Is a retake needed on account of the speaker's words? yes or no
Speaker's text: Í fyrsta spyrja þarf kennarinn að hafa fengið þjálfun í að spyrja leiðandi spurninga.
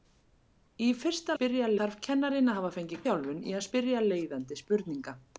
no